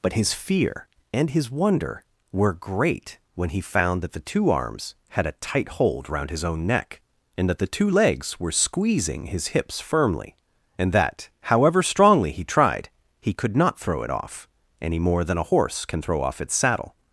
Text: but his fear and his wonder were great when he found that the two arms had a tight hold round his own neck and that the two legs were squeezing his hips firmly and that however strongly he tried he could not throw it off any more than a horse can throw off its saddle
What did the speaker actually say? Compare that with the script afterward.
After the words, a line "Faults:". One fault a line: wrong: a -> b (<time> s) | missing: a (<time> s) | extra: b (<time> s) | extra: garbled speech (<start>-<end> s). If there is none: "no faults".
but his fear and his wonder were great when he found that the two arms had a tight hold round his own neck and that the two legs were squeezing his hips firmly and that however strongly he tried he could not throw it off any more than a horse can throw off its saddle
Faults:
no faults